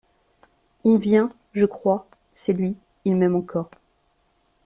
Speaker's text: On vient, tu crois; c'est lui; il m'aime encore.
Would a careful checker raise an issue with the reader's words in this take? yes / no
yes